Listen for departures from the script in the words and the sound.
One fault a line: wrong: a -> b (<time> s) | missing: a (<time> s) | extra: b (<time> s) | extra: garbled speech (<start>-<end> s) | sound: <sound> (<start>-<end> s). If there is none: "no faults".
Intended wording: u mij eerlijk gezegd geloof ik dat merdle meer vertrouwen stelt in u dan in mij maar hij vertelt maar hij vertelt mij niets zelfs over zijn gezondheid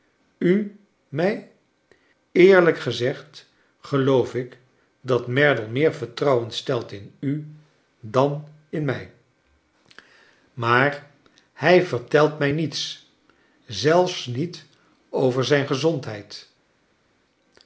missing: maar hij vertelt (12.4 s)
extra: niet (14.3 s)